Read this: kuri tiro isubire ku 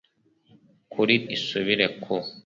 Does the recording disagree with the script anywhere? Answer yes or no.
yes